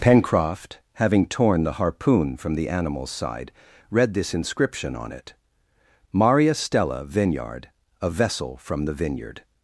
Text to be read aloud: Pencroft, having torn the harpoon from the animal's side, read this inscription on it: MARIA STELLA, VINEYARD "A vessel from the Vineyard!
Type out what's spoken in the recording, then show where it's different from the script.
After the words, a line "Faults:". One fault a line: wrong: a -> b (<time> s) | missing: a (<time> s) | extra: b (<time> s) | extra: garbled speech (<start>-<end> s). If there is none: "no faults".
Pencroft, having torn the harpoon from the animal's side, read this inscription on it: MARIA STELLA, VINEYARD "A vessel from the Vineyard!
Faults:
no faults